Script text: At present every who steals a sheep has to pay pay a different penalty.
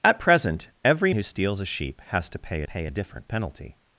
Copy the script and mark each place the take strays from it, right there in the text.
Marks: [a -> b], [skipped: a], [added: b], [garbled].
At present every who steals a sheep has to pay pay a different penalty.